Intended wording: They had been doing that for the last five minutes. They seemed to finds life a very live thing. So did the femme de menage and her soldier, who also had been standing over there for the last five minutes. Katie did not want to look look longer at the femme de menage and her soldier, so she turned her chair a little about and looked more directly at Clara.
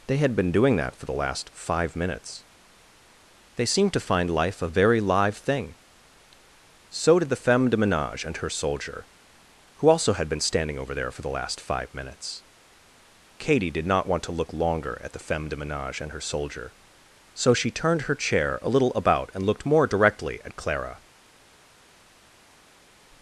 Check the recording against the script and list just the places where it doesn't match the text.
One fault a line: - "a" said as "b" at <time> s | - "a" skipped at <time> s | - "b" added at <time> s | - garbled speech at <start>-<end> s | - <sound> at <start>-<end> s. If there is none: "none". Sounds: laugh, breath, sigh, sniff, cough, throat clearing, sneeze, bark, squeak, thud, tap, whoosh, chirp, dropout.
- "finds" said as "find" at 4.0 s
- "look" skipped at 14.5 s